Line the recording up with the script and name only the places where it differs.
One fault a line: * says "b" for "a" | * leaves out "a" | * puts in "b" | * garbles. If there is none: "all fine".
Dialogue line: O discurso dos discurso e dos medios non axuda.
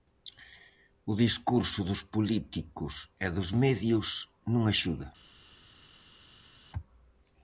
* says "políticos" for "discurso"